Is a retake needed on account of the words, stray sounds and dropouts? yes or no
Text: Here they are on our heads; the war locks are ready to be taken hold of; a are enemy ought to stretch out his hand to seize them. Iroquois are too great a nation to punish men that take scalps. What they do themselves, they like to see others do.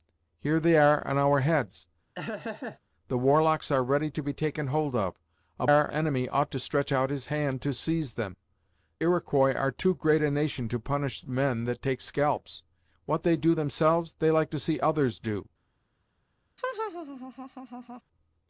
yes